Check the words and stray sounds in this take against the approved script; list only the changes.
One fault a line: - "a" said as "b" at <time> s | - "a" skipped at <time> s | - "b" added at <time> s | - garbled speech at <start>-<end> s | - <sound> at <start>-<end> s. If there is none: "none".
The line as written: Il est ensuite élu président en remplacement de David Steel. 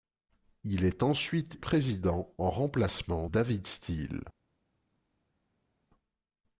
- "élu" skipped at 1.6 s
- "de" skipped at 3.3 s